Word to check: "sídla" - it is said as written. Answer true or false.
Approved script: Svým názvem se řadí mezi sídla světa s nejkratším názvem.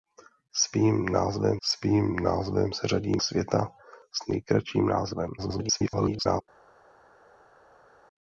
false